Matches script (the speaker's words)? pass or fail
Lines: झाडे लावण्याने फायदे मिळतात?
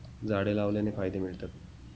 pass